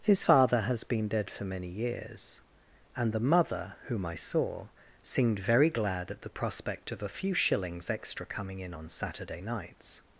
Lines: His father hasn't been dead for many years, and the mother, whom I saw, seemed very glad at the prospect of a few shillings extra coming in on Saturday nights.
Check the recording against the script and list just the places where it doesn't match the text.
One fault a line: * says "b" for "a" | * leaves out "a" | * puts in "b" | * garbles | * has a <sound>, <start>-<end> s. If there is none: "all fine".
* says "has" for "hasn't"